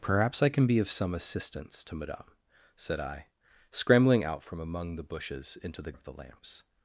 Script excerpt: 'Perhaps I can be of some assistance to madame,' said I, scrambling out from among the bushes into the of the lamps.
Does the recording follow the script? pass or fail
pass